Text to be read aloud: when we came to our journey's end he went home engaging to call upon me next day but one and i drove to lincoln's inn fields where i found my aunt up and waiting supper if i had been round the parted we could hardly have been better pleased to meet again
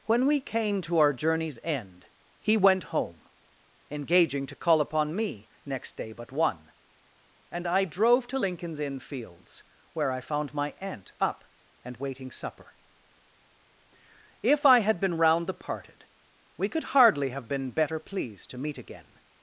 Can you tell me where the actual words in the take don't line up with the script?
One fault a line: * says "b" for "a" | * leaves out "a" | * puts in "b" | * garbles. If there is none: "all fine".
all fine